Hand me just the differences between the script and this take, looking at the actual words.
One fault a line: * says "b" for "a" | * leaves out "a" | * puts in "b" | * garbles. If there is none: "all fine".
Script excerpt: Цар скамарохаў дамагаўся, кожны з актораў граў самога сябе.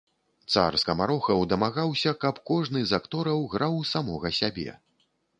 * puts in "каб"